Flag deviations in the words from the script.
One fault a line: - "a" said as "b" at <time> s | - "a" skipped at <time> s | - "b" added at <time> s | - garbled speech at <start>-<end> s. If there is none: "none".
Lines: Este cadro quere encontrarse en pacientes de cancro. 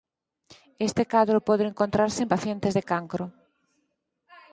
- "quere" said as "pode" at 1.5 s